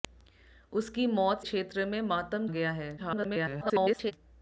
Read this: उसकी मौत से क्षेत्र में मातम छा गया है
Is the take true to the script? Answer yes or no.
no